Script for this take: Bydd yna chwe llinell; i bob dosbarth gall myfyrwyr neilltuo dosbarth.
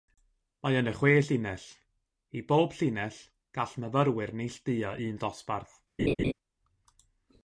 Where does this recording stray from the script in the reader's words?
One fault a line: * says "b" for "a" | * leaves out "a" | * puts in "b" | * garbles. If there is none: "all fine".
* says "Mae" for "Bydd"
* says "llinell" for "dosbarth"
* puts in "un"